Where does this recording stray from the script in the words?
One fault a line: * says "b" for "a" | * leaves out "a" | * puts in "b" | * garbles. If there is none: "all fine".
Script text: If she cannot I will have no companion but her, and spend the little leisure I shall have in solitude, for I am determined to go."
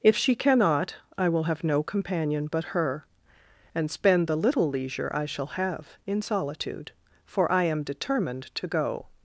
all fine